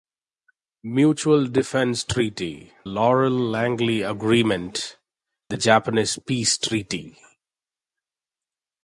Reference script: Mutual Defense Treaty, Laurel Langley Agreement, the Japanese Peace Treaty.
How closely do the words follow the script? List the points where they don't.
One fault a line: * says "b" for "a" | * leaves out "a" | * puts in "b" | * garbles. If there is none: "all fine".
all fine